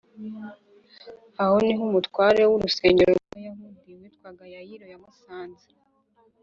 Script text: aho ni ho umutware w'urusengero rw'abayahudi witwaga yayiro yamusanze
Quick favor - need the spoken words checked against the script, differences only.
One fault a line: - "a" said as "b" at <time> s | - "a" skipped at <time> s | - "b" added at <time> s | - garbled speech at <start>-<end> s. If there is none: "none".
none